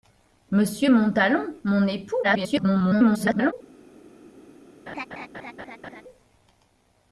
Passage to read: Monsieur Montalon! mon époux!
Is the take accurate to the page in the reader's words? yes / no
no